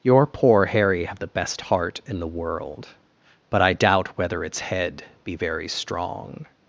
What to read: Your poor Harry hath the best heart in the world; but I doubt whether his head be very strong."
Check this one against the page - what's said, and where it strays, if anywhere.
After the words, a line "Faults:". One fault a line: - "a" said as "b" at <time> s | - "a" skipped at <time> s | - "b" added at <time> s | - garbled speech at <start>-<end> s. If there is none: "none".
Your poor Harry have the best heart in the world; but I doubt whether its head be very strong."
Faults:
- "hath" said as "have" at 1.1 s
- "his" said as "its" at 4.4 s